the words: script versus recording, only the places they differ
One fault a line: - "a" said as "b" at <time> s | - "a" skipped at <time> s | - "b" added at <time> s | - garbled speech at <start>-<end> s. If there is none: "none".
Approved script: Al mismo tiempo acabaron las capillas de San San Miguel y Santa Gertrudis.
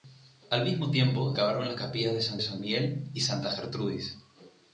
none